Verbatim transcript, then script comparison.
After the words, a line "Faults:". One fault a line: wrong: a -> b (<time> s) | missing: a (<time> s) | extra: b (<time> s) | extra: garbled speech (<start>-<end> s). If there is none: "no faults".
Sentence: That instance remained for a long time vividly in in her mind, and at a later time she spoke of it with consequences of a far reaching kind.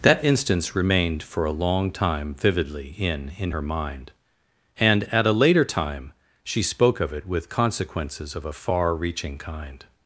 That instance remained for a long time vividly in in her mind, and at a later time she spoke of it with consequences of a far reaching kind.
Faults:
no faults